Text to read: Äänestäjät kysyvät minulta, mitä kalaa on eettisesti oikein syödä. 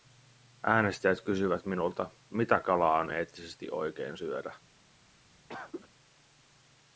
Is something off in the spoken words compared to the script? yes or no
no